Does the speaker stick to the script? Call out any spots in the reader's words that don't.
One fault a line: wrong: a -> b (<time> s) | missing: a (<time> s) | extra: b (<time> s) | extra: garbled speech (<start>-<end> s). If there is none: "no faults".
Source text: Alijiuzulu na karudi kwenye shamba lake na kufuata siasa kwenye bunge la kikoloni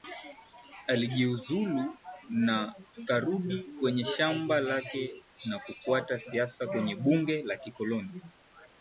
no faults